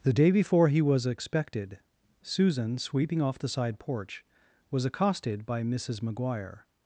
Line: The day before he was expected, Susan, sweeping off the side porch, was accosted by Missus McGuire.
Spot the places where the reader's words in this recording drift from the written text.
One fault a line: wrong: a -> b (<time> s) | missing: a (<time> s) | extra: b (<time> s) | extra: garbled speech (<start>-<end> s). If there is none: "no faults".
no faults